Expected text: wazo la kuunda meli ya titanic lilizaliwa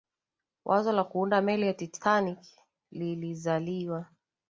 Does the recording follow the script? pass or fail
pass